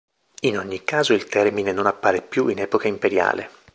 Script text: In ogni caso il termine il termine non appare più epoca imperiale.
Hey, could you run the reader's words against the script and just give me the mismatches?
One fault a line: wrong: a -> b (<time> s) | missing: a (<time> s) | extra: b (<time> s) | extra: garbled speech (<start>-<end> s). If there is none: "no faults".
missing: il termine (1.7 s)
extra: in (2.5 s)